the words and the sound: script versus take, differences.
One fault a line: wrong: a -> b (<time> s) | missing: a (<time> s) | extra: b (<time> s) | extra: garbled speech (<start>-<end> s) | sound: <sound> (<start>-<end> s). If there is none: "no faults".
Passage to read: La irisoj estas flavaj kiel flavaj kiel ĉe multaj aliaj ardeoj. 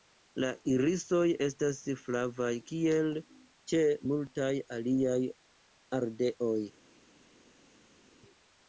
missing: flavaj kiel (3.1 s)